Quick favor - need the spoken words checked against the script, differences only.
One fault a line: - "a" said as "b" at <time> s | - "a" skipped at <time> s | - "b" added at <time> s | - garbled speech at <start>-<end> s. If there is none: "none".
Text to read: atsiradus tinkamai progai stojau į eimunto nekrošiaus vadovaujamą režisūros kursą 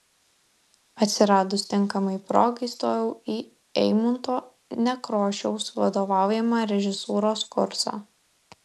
none